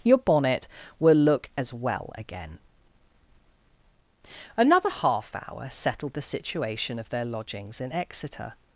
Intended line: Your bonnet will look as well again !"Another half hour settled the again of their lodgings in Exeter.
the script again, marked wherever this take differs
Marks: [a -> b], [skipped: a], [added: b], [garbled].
Your bonnet will look as well again !"Another half hour settled the [again -> situation] of their lodgings in Exeter.